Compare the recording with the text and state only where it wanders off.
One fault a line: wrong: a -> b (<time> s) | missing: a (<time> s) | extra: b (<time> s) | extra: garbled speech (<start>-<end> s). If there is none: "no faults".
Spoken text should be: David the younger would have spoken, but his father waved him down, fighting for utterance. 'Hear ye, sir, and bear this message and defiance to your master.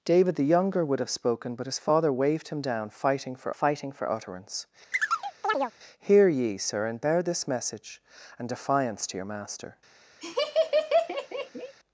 extra: fighting for (3.5 s)